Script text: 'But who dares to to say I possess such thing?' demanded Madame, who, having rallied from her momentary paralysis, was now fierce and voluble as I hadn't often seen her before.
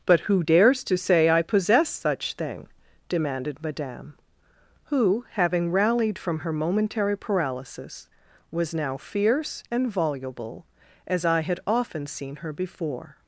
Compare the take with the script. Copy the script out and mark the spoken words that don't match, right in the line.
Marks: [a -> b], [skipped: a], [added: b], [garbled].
'But who dares to [skipped: to] say I possess such thing?' demanded Madame, who, having rallied from her momentary paralysis, was now fierce and voluble as I [hadn't -> had] often seen her before.